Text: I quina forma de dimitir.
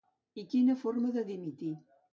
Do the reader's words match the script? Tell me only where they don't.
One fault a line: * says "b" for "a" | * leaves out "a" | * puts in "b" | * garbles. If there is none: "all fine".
all fine